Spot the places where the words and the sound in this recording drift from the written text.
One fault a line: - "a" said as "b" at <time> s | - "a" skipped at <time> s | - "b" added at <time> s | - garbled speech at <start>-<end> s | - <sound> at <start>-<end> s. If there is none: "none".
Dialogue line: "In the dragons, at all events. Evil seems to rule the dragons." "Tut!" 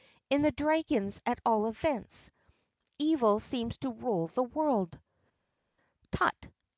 - "dragons" said as "world" at 4.4 s